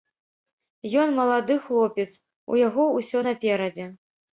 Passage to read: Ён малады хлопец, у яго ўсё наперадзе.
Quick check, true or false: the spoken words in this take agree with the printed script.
true